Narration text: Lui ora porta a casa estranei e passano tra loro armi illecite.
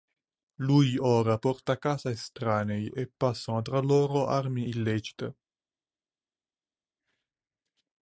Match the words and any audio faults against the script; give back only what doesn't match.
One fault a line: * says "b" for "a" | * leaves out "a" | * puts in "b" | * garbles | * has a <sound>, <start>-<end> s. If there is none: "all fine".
all fine